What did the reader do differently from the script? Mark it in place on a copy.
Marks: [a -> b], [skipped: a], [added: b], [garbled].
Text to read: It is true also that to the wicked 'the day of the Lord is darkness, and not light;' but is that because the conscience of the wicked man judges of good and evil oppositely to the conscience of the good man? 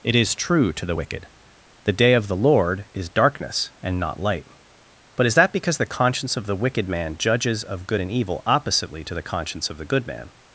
It is true [skipped: also that] to the wicked 'the day of the Lord is darkness, and not light;' but is that because the conscience of the wicked man judges of good and evil oppositely to the conscience of the good man?